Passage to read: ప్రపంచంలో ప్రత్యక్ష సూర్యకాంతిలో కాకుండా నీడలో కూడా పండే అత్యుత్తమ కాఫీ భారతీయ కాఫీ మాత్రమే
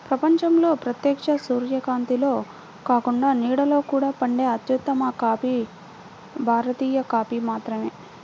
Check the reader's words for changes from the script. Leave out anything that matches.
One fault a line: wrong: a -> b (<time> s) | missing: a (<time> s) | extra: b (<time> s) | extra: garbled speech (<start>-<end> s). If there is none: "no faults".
no faults